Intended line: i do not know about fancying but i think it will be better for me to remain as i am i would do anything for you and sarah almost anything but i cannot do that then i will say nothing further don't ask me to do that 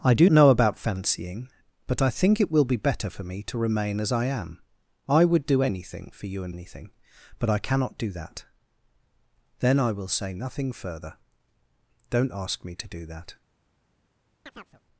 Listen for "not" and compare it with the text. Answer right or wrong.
wrong